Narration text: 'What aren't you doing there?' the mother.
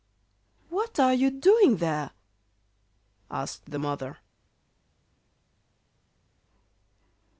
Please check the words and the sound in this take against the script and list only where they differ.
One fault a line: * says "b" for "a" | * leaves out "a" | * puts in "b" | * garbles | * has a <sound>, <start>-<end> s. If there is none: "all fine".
* says "are" for "aren't"
* puts in "asked"